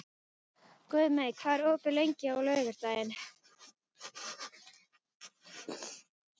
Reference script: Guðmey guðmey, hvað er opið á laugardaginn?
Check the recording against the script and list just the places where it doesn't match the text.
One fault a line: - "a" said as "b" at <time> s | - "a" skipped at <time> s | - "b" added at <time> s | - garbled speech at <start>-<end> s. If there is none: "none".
- "guðmey" skipped at 1.3 s
- "lengi" added at 2.0 s